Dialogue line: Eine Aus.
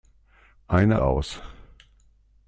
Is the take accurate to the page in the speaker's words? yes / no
yes